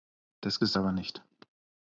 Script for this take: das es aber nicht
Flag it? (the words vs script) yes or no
no